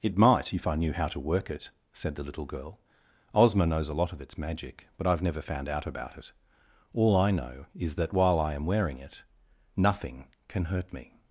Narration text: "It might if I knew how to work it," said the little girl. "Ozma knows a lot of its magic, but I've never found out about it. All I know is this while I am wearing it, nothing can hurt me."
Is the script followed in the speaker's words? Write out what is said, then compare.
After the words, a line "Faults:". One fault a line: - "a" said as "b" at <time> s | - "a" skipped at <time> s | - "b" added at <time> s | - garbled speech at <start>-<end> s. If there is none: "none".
"It might if I knew how to work it," said the little girl. "Ozma knows a lot of its magic, but I've never found out about it. All I know is that while I am wearing it, nothing can hurt me."
Faults:
- "this" said as "that" at 8.0 s